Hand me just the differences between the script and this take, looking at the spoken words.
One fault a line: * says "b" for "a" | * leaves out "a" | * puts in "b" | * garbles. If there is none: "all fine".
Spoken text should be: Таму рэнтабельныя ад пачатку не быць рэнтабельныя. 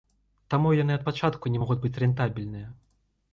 * says "яны" for "рэнтабельныя"
* puts in "могуць"